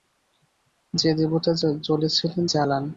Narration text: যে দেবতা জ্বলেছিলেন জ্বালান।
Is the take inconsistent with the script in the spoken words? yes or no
no